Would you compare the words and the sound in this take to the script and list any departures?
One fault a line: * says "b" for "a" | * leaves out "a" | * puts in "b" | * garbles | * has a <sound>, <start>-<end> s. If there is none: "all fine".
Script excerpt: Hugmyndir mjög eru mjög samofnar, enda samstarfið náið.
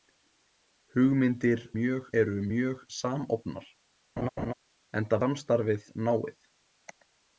* has a laugh, 4.2-4.5 s